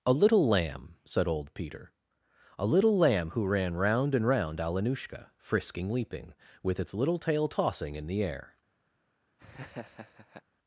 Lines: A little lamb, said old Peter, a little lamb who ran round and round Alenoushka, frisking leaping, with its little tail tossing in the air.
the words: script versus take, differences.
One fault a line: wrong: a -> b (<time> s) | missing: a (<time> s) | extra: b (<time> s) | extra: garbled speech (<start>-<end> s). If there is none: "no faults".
no faults